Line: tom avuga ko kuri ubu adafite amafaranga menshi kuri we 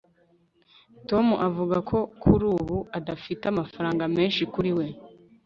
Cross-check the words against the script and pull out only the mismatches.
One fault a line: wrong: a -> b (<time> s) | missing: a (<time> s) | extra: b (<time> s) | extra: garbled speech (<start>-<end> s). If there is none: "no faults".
no faults